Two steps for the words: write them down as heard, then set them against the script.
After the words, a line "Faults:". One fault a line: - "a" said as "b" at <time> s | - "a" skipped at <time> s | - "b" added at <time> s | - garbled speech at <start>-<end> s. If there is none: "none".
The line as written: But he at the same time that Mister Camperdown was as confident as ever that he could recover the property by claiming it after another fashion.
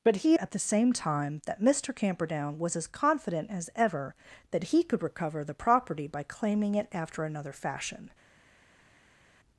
But he at the same time that Mister Camperdown was as confident as ever that he could recover the property by claiming it after another fashion.
Faults:
none